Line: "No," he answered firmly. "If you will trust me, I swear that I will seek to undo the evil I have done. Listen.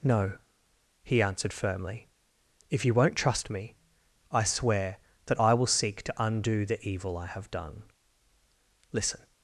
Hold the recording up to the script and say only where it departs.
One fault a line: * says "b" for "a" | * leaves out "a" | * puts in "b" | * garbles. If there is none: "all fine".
* says "won't" for "will"